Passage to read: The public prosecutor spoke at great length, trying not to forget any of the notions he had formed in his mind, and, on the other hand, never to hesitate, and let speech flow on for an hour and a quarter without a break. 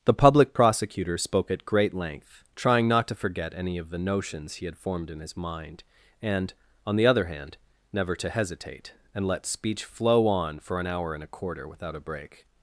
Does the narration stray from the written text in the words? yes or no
no